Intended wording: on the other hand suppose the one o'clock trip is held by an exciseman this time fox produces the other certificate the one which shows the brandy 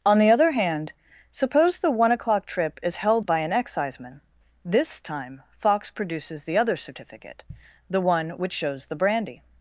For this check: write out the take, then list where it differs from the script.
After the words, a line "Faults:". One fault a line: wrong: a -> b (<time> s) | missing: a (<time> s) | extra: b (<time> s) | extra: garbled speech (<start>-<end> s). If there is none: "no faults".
on the other hand suppose the one o'clock trip is held by an exciseman this time fox produces the other certificate the one which shows the brandy
Faults:
no faults